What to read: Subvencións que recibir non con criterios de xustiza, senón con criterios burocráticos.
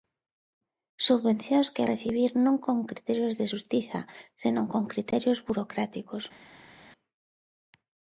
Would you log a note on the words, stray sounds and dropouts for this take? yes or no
no